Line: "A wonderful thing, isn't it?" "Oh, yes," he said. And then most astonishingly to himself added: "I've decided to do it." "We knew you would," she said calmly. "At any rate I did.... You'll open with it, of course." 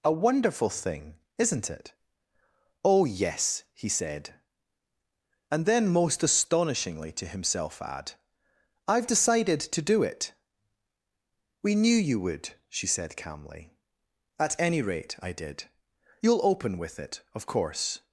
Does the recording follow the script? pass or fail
fail